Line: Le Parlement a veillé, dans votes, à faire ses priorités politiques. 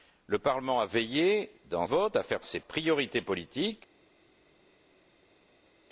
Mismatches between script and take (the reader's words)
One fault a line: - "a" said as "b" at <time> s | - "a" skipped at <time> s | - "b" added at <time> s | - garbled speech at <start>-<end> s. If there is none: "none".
none